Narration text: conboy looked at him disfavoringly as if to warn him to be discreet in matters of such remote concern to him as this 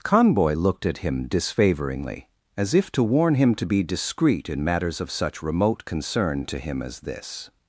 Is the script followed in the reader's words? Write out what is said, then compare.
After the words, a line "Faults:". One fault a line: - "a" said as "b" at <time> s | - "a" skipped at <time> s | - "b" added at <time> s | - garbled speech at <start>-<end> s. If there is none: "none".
conboy looked at him disfavoringly as if to warn him to be discreet in matters of such remote concern to him as this
Faults:
none